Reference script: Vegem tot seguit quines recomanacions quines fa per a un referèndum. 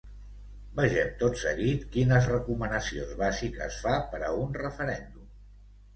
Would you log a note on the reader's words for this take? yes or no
yes